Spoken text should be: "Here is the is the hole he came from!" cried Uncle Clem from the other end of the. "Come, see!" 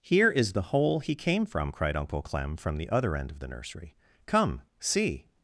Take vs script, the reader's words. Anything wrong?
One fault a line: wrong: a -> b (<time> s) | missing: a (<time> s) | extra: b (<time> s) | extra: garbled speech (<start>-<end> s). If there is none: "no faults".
missing: is the (0.7 s)
extra: nursery (3.5 s)